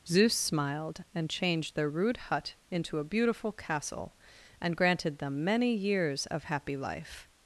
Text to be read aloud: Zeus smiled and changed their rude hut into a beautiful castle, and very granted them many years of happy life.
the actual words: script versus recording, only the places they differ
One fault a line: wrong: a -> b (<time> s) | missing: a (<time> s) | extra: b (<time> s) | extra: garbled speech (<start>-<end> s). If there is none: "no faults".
missing: very (4.8 s)